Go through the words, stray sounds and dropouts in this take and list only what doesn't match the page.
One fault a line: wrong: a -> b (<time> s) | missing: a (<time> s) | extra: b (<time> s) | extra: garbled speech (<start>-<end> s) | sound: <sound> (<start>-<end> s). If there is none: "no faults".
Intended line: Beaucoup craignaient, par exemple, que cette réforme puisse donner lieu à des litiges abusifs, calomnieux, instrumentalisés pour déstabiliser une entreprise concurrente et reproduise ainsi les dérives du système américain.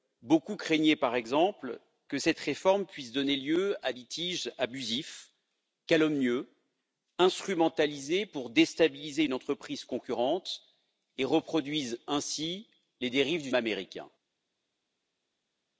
missing: des (3.9 s)
missing: système (13.5 s)